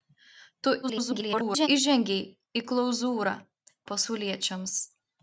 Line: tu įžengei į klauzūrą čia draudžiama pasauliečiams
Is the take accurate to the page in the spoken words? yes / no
no